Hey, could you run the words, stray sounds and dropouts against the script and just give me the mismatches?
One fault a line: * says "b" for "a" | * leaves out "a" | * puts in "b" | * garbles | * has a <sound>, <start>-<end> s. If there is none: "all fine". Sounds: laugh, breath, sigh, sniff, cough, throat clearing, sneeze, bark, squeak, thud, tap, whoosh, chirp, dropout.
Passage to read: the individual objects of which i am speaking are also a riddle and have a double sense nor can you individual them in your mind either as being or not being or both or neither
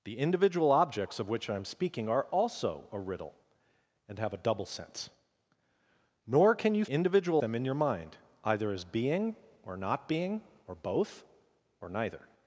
all fine